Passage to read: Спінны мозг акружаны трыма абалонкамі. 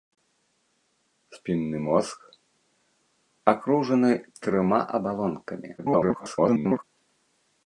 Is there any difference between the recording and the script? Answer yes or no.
yes